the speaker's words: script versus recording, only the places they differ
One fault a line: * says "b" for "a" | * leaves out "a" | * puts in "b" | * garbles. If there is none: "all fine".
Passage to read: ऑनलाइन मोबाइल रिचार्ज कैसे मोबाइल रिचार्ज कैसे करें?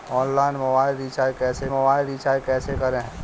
all fine